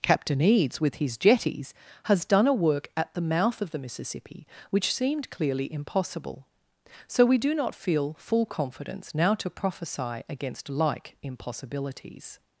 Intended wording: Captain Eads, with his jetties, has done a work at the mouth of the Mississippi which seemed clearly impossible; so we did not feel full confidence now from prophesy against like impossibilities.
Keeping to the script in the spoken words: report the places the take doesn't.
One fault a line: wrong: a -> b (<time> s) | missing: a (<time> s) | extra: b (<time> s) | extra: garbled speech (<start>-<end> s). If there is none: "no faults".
wrong: did -> do (7.4 s)
wrong: from -> to (9.3 s)